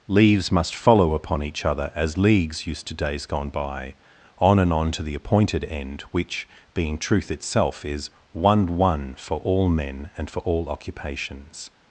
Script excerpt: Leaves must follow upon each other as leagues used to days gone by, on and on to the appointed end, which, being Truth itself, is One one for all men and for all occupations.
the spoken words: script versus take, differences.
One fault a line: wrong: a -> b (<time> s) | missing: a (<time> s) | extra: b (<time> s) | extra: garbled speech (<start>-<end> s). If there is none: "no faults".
no faults